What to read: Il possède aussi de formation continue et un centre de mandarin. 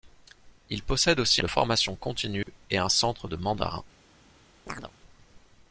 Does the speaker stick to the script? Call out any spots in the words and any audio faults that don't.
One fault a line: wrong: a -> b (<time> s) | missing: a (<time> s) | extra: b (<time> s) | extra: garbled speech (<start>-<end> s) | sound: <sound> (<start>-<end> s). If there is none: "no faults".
sound: dropout (2.4-2.5 s)
sound: chirp (4.7-4.9 s)